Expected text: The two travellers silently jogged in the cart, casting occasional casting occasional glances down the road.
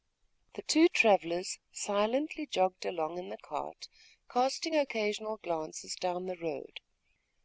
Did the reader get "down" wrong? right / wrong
right